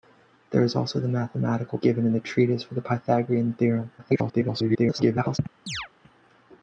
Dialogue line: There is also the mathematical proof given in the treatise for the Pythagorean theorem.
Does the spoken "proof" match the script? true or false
false